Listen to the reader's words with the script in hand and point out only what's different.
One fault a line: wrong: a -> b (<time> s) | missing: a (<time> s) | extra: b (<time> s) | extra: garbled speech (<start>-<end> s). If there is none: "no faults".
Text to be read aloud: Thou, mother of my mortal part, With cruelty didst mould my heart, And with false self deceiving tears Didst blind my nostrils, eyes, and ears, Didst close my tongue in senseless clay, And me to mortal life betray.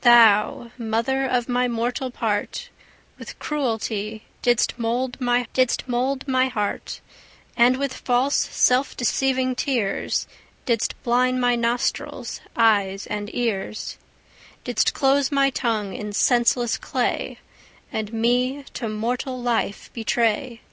extra: didst mould my (5.5 s)